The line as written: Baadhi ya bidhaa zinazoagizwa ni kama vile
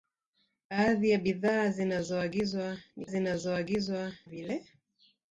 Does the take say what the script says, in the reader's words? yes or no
no